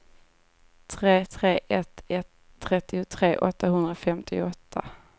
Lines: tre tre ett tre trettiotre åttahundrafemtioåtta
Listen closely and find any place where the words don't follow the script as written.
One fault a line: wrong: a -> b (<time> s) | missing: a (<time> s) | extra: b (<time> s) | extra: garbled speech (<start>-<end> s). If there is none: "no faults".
wrong: tre -> ett (2.1 s)